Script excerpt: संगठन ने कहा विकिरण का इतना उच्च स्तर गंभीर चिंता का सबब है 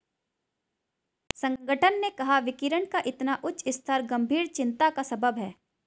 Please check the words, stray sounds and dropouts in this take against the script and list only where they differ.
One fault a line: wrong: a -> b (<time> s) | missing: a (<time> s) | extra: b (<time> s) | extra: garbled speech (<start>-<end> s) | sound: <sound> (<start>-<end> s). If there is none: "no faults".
no faults